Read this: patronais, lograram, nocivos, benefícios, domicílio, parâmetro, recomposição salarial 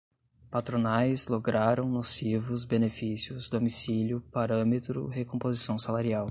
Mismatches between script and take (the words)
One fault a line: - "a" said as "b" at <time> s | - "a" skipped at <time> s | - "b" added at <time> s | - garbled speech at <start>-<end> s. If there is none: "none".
none